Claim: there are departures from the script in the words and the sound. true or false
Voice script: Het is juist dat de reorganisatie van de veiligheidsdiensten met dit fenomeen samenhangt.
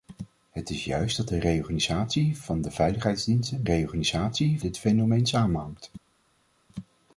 true